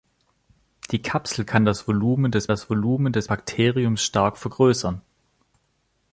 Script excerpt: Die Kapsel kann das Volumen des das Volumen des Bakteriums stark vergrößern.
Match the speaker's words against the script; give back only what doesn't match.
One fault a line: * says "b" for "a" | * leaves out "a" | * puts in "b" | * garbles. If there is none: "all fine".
all fine